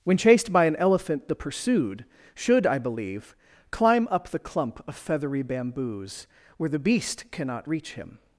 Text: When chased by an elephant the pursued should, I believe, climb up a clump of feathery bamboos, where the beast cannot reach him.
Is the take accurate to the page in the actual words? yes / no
no